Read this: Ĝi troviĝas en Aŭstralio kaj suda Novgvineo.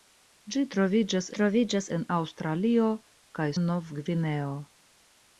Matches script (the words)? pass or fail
fail